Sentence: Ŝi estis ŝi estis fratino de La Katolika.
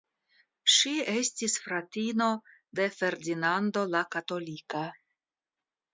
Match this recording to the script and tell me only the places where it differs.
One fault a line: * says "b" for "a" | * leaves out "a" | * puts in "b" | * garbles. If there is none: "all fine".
* leaves out "ŝi estis"
* puts in "Ferdinando"